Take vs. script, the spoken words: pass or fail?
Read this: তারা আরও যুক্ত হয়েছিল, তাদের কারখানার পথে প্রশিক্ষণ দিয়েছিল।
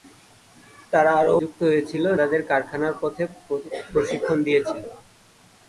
pass